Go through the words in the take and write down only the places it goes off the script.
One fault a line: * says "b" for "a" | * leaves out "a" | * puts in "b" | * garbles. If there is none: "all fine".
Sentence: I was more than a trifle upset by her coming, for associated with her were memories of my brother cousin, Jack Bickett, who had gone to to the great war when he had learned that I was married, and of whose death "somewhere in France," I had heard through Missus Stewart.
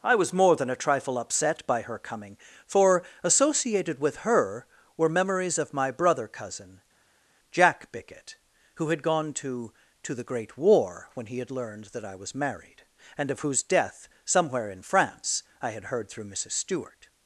all fine